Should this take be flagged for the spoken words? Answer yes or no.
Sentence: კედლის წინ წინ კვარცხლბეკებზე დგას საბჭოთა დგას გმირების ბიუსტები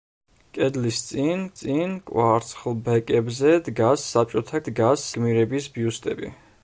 no